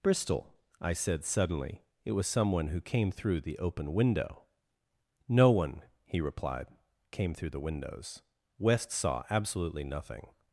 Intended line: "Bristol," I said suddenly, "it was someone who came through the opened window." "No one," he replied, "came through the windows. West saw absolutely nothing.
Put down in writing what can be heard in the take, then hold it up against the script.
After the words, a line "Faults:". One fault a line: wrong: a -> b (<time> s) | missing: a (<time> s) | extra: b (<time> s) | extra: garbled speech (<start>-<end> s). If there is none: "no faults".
"Bristol," I said suddenly, "it was someone who came through the open window." "No one," he replied, "came through the windows. West saw absolutely nothing.
Faults:
wrong: opened -> open (3.6 s)